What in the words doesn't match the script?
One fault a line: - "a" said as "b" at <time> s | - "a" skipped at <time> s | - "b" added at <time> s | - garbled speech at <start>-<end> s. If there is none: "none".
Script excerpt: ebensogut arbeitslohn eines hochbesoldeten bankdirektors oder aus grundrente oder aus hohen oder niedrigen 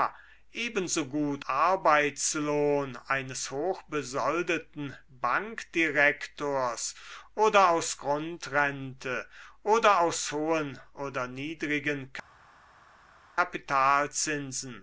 none